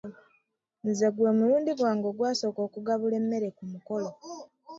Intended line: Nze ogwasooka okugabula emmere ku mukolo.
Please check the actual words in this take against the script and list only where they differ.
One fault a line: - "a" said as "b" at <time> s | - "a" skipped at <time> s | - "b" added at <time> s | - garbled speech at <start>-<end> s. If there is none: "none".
- "gwe mulundi gwange" added at 1.1 s